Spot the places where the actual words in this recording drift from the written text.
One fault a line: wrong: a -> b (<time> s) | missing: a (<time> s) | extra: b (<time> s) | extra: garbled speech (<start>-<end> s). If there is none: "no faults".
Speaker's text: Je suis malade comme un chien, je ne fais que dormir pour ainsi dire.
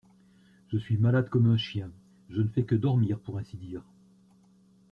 no faults